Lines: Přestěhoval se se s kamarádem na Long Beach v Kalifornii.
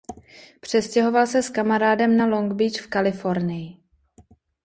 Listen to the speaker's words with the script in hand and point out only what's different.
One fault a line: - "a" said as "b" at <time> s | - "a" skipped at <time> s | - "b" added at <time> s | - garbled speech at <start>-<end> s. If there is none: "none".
- "se" skipped at 1.4 s